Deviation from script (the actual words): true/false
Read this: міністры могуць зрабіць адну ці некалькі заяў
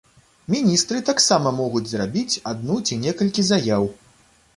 true